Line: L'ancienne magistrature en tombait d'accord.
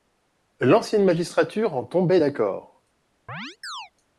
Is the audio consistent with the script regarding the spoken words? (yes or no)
yes